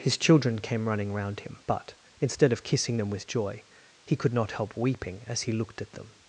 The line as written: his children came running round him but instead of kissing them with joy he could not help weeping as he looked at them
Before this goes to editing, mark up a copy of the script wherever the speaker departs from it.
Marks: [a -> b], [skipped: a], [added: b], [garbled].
his children came running round him but instead of kissing them with joy he could not help weeping as he looked at them